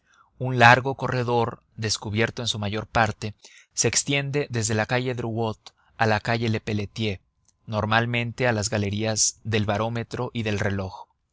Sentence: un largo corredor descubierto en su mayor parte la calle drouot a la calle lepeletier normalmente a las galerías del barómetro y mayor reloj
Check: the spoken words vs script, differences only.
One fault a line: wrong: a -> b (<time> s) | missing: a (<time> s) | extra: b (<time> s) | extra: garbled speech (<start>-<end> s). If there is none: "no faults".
extra: se extiende desde (3.8 s)
wrong: mayor -> del (10.4 s)